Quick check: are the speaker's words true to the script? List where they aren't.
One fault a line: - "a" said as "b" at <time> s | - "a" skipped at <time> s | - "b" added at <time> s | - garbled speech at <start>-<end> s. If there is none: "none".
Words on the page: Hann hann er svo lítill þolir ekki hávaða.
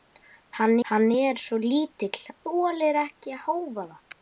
none